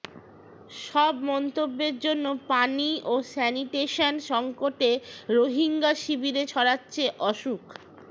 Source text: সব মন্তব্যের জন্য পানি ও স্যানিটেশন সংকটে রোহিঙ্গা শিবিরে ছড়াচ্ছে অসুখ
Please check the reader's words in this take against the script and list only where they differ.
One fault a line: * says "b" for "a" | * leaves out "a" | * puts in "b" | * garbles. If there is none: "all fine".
all fine